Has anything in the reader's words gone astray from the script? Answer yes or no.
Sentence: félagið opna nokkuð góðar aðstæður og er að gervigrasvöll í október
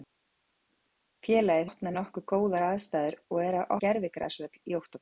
no